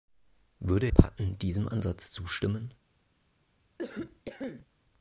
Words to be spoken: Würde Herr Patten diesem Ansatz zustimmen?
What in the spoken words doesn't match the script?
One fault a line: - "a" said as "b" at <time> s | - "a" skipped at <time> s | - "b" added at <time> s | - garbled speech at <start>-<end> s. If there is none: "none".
- "Herr" skipped at 0.9 s